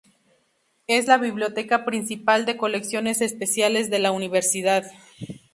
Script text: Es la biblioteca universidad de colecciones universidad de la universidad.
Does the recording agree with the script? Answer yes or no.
no